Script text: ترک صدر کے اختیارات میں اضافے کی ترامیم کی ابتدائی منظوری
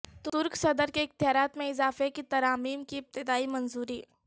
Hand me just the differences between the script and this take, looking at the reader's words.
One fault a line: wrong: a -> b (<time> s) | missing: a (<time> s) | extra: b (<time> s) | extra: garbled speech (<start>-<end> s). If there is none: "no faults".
no faults